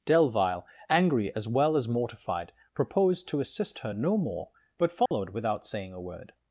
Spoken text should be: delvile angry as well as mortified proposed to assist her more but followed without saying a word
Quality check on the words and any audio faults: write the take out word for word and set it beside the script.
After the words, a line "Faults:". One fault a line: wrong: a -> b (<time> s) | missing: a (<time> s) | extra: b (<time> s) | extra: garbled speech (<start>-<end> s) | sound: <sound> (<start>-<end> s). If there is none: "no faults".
delvile angry as well as mortified proposed to assist her no more but followed without saying a word
Faults:
extra: no (3.9 s)
sound: dropout (5.1-5.1 s)